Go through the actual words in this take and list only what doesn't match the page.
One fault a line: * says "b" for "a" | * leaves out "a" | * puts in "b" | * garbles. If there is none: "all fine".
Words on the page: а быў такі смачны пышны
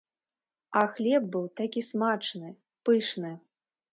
* puts in "хлеб"